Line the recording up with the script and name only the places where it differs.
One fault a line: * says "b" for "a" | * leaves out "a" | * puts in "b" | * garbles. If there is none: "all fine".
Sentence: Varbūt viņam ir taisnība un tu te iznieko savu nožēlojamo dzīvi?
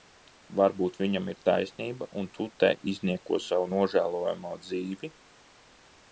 all fine